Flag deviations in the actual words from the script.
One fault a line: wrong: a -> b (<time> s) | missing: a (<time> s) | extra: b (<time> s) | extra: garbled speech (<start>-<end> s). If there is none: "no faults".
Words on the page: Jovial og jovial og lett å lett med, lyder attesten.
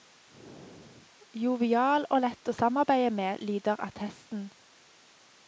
missing: jovial og (2.2 s)
wrong: lett -> samarbeide (2.6 s)